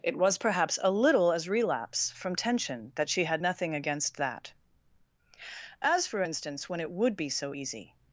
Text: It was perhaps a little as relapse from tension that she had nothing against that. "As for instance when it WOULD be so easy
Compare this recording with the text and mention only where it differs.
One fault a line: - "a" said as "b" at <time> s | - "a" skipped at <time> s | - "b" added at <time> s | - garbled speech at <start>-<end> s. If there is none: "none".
none